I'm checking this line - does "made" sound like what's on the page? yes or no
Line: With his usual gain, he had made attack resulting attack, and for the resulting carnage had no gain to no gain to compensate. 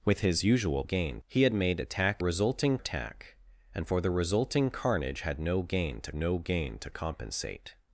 yes